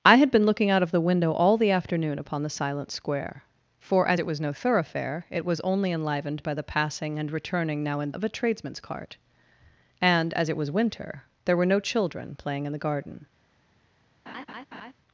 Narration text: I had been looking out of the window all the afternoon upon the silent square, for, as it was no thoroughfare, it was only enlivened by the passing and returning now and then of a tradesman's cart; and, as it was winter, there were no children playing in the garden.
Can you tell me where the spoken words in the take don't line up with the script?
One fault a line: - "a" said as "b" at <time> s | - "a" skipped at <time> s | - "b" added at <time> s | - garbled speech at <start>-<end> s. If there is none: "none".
- "then" skipped at 8.1 s